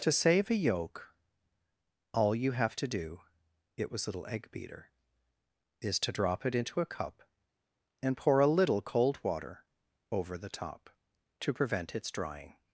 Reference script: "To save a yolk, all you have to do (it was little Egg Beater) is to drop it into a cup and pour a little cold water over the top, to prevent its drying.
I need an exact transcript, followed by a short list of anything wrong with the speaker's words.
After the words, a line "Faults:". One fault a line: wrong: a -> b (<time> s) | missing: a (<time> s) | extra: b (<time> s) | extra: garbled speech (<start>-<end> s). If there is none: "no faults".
"To save a yolk, all you have to do (it was little Egg Beater) is to drop it into a cup and pour a little cold water over the top, to prevent its drying.
Faults:
no faults